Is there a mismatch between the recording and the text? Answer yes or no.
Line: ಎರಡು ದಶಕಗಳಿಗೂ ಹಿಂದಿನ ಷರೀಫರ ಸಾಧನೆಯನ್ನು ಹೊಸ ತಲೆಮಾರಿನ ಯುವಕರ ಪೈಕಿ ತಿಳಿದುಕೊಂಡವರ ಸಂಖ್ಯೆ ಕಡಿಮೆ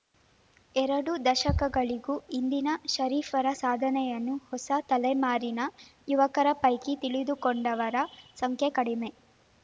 no